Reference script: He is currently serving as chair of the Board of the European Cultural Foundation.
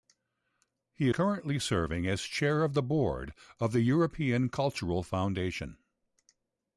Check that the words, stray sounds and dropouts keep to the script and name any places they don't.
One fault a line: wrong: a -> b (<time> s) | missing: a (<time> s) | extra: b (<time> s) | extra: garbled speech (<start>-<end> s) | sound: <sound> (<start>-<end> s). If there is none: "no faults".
missing: is (1.1 s)